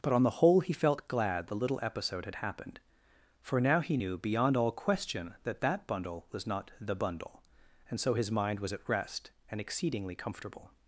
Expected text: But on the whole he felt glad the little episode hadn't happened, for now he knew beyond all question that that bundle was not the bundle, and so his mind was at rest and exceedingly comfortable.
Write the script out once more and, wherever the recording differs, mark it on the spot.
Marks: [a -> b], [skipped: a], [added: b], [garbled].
But on the whole he felt glad the little episode [hadn't -> had] happened, for now he knew beyond all question that that bundle was not the bundle, and so his mind was at rest and exceedingly comfortable.